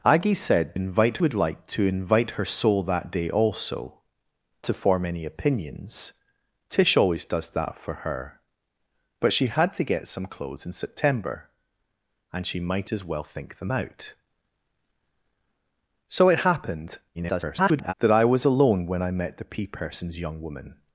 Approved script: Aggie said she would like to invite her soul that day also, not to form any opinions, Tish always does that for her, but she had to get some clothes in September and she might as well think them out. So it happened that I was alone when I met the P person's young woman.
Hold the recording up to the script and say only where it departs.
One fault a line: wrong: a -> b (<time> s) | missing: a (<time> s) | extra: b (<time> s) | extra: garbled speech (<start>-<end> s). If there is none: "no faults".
wrong: she -> invite (0.7 s)
missing: not (4.0 s)
extra: garbled speech (17.1-17.9 s)